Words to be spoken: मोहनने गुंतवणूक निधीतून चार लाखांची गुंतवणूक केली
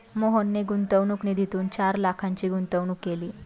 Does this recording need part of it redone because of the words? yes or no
no